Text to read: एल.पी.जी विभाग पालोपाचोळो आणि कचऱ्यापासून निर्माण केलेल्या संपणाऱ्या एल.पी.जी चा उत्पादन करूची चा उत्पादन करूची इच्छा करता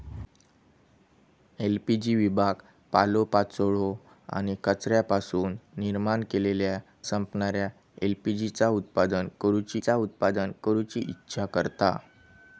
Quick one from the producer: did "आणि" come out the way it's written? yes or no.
yes